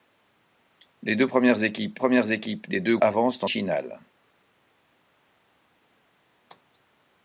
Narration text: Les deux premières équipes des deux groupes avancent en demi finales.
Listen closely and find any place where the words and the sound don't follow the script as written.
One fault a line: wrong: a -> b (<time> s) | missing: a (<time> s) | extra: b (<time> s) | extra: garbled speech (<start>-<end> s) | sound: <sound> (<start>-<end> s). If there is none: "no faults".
extra: premières équipes (2.0 s)
missing: groupes (3.0 s)
missing: demi (3.5 s)